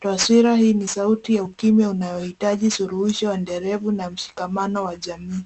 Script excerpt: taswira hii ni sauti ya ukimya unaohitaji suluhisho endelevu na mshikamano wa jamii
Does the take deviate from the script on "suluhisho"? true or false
false